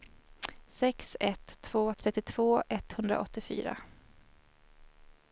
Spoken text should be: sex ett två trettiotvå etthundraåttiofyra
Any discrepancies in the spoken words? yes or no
no